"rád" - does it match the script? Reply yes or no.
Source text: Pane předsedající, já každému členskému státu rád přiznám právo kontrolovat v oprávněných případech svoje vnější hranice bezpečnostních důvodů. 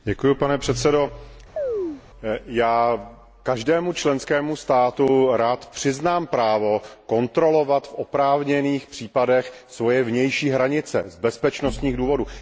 yes